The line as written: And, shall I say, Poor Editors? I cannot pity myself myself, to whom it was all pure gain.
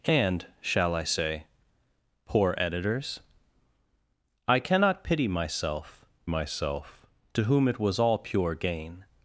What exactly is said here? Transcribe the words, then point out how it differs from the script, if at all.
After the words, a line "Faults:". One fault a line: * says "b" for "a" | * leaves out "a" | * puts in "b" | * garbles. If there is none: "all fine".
And, shall I say, Poor Editors? I cannot pity myself myself, to whom it was all pure gain.
Faults:
all fine